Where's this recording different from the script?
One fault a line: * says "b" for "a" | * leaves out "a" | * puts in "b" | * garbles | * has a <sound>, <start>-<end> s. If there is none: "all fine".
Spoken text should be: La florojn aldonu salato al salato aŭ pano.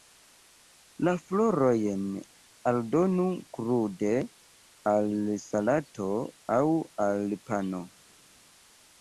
* says "krude" for "salato"
* puts in "al"